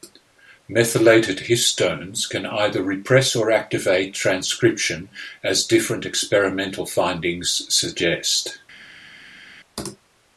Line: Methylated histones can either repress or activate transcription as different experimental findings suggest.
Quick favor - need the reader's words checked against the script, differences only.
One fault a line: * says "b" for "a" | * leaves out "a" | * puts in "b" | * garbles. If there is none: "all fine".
all fine